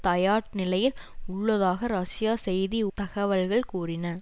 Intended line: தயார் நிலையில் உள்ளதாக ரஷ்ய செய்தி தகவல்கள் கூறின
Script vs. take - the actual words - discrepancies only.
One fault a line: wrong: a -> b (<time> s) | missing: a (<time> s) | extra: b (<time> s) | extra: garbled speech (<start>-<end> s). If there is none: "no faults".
no faults